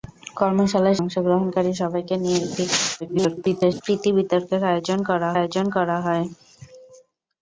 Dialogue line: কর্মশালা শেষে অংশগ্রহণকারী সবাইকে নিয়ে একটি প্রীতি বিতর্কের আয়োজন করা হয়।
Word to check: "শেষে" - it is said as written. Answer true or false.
false